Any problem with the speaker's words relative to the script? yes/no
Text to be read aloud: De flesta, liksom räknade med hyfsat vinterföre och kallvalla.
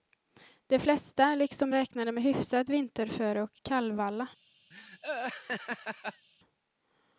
no